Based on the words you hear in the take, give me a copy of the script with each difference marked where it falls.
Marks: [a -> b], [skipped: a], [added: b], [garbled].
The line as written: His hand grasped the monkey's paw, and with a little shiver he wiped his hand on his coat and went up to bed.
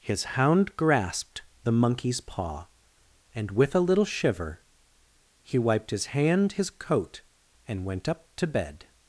His [hand -> hound] grasped the monkey's paw, and with a little shiver he wiped his hand [skipped: on] his coat and went up to bed.